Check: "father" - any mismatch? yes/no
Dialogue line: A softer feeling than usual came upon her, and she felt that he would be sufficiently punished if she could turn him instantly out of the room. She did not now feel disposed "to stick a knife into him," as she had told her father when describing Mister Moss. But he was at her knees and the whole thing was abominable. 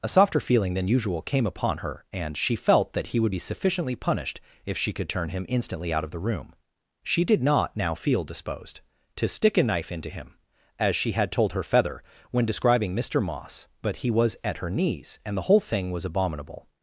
yes